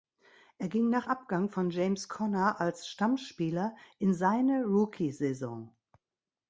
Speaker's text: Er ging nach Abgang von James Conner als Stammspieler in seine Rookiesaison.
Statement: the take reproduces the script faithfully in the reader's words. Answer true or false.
true